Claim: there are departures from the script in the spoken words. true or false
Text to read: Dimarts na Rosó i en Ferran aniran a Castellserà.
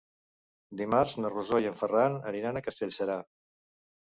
false